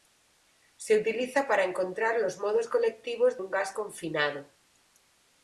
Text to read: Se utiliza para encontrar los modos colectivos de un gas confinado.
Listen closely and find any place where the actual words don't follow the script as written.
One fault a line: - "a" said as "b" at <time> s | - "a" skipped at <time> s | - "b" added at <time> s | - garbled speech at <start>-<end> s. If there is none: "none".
- "de" skipped at 3.4 s